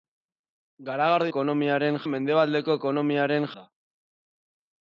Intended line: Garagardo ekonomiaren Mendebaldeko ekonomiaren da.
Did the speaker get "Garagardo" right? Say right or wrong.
right